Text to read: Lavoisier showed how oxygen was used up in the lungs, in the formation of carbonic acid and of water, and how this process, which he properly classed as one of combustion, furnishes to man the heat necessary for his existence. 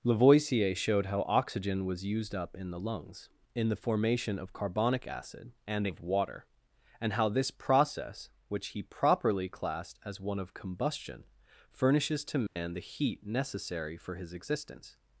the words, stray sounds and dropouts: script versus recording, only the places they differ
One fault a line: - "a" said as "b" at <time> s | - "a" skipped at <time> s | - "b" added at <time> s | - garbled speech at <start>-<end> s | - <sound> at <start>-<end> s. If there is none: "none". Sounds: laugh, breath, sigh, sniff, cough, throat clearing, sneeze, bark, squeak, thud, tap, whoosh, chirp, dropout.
- dropout at 12.5-12.6 s